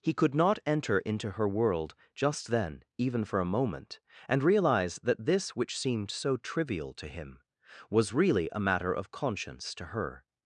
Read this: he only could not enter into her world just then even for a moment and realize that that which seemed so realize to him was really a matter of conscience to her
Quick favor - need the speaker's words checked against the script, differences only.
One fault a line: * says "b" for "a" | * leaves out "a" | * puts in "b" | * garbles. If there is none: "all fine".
* leaves out "only"
* says "this" for "that"
* says "trivial" for "realize"